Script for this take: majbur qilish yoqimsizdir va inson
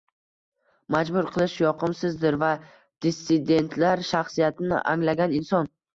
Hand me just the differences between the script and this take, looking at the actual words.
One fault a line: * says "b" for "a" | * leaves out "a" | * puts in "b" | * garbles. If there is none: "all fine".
* puts in "dissidentlar shaxsiyatini anglagan"